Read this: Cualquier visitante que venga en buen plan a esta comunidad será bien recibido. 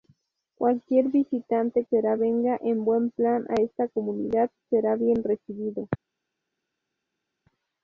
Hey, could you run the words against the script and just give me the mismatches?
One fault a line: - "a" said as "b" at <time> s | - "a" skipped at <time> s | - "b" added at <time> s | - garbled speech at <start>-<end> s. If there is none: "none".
- "que" said as "será" at 1.9 s